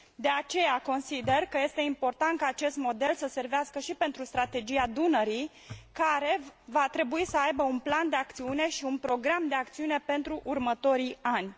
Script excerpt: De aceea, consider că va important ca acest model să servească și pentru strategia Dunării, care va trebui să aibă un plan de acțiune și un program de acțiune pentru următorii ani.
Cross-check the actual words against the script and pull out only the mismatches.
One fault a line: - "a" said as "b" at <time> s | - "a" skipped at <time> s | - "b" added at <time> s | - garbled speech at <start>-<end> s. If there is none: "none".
- "va" said as "este" at 1.6 s